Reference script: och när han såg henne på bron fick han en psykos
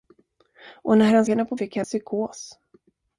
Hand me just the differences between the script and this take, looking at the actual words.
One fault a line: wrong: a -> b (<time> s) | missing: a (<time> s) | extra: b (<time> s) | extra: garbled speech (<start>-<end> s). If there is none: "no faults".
missing: såg (1.2 s)
missing: bron (1.6 s)
missing: en (1.9 s)